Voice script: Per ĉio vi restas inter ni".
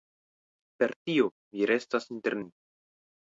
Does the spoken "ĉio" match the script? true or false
false